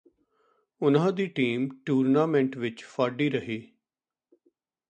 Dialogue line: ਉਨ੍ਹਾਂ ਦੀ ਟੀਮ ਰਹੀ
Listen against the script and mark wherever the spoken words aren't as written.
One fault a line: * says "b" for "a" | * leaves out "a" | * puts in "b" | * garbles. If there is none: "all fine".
* puts in "ਟੂਰਨਾਮੈਂਟ ਵਿਚ ਫਾਡੀ"